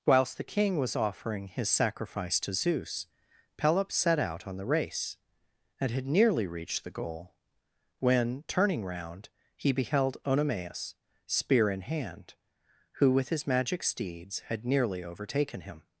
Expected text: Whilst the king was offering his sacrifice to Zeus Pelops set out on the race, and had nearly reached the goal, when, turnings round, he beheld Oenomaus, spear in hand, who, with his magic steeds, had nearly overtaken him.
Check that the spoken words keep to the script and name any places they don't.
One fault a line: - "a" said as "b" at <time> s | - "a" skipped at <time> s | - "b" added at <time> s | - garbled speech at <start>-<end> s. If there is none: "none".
- "turnings" said as "turning" at 8.5 s